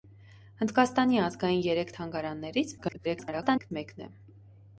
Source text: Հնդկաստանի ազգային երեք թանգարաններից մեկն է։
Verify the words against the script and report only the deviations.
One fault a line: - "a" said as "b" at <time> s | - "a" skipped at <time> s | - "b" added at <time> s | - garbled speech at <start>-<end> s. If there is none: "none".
- garbled speech at 2.8-3.7 s